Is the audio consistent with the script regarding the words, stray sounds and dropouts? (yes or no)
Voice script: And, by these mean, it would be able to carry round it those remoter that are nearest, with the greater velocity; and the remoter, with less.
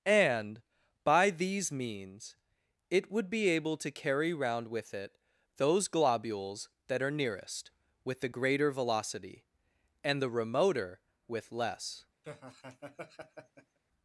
no